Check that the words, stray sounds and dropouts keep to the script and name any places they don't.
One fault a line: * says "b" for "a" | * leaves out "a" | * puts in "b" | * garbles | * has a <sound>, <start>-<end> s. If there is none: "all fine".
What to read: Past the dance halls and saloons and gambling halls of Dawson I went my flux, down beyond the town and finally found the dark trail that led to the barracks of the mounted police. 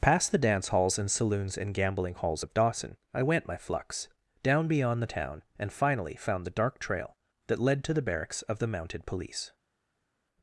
all fine